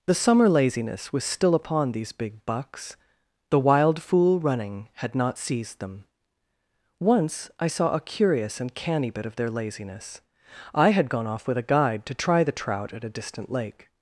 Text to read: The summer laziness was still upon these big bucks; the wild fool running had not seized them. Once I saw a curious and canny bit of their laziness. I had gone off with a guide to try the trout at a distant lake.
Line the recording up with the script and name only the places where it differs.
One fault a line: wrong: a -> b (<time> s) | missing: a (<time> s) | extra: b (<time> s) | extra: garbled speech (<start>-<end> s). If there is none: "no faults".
no faults